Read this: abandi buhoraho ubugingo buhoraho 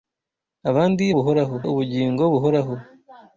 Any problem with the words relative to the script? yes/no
no